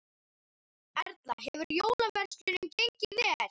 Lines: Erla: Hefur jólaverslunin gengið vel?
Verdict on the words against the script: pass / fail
pass